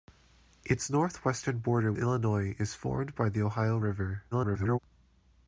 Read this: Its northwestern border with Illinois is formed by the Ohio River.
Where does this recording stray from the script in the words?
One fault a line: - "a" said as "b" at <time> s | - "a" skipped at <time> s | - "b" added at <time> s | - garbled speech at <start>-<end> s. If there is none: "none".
- "with" skipped at 1.9 s
- garbled speech at 4.3-4.8 s